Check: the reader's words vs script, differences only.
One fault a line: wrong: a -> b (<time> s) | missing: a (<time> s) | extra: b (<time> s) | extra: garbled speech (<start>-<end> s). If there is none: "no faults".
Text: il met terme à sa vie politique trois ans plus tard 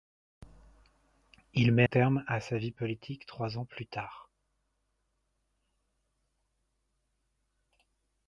no faults